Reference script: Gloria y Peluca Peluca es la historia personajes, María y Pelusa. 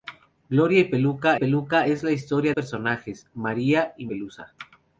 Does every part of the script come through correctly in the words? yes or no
yes